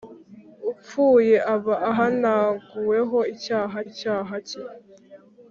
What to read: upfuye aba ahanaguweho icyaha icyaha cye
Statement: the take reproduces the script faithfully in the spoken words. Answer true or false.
true